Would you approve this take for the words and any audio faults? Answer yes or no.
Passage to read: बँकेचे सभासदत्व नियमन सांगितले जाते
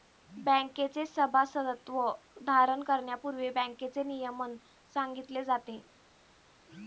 no